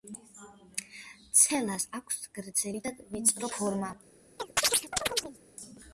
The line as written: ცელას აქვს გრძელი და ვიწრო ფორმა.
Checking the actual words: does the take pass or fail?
pass